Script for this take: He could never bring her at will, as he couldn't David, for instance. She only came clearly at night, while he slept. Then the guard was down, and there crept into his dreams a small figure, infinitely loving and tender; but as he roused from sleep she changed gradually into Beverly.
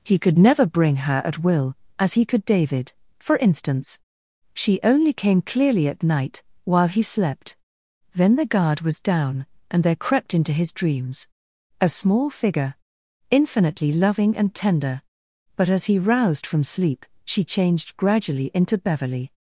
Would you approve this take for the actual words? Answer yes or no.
no